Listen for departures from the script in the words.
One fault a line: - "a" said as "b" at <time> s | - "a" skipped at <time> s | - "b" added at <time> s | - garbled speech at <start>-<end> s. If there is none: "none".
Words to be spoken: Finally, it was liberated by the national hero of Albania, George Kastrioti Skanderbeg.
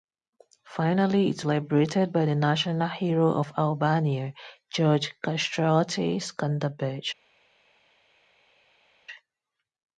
- "was" skipped at 1.4 s